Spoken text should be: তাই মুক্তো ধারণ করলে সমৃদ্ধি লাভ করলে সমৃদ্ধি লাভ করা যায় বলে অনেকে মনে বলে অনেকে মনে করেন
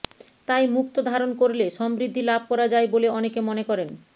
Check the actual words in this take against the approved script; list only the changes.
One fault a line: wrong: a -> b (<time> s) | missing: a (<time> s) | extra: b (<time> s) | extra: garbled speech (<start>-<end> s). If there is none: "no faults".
missing: করলে সমৃদ্ধি লাভ (2.4 s)
missing: বলে অনেকে মনে (3.6 s)